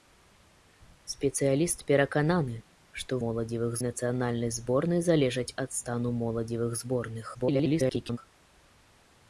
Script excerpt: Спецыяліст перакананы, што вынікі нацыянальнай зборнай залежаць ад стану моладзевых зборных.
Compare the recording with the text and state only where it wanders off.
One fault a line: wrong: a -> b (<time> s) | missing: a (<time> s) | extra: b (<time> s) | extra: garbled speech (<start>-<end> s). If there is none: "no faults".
wrong: вынікі -> моладзевых (3.2 s)
extra: garbled speech (7.3-8.2 s)